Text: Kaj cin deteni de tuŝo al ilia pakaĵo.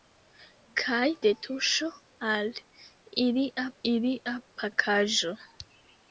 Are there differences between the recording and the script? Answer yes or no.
yes